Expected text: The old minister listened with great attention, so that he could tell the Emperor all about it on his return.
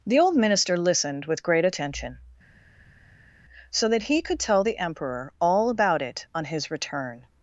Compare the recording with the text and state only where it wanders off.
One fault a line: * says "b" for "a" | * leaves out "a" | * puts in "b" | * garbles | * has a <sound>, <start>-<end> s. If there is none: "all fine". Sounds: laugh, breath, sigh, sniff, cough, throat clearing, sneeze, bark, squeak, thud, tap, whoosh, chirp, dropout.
all fine